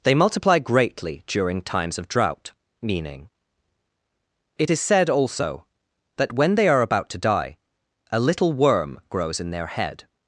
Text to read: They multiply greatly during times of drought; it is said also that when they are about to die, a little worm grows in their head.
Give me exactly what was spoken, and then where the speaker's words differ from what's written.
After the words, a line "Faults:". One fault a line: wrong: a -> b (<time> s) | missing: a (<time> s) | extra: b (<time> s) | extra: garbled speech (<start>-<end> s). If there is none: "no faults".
They multiply greatly during times of drought; meaning it is said also that when they are about to die, a little worm grows in their head.
Faults:
extra: meaning (2.8 s)